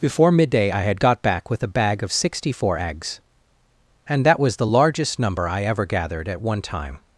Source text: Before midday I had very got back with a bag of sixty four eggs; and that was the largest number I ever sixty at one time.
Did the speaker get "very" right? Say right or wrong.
wrong